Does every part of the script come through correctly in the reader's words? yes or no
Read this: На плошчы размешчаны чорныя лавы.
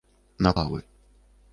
no